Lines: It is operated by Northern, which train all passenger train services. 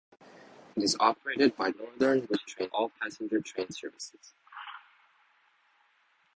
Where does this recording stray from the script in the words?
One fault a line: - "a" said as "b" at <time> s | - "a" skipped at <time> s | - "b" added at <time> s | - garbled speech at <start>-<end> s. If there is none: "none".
none